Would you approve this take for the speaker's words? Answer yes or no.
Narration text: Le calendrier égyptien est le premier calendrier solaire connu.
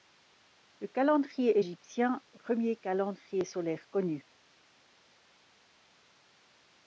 no